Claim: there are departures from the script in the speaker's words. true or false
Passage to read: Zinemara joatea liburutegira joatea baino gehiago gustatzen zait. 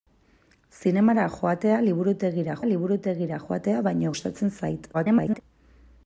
true